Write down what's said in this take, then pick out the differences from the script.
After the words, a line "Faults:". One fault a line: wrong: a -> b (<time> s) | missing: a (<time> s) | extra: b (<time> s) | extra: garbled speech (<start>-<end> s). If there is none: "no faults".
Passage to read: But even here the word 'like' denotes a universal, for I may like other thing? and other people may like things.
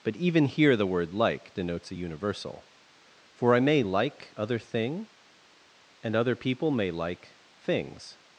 But even here the word 'like' denotes a universal, for I may like other thing? and other people may like things.
Faults:
no faults